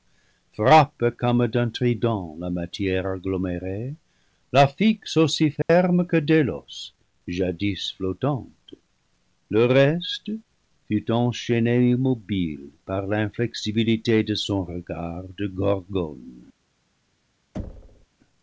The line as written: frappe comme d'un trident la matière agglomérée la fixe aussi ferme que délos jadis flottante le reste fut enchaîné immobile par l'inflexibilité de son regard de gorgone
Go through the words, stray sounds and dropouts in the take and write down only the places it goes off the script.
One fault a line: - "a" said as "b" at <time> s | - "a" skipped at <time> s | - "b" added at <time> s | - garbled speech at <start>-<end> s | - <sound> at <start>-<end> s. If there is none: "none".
- dropout at 5.6-5.7 s
- thud at 17.5-18.1 s